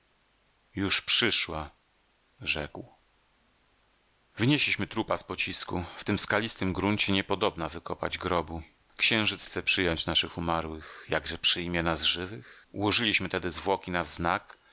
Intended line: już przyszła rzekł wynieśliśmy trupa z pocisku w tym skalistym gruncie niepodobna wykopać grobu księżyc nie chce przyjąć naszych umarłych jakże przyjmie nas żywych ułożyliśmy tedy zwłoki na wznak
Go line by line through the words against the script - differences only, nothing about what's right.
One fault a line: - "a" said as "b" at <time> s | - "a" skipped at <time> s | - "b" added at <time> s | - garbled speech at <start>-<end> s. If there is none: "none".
- "nie" skipped at 9.5 s